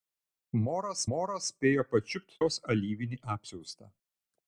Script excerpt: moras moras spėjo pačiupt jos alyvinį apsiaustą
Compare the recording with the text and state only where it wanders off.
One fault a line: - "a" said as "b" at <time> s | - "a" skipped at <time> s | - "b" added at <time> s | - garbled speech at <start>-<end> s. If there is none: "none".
none